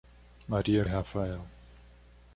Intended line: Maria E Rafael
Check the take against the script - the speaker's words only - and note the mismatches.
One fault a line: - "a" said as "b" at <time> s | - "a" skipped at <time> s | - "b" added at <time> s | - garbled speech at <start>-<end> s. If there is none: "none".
none